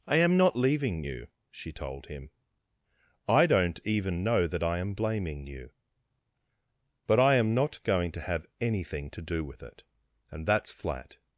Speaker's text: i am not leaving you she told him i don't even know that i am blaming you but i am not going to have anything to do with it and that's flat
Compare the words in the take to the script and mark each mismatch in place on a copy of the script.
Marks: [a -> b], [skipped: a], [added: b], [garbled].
i am not leaving you she told him i don't even know that i am blaming you but i am not going to have anything to do with it and that's flat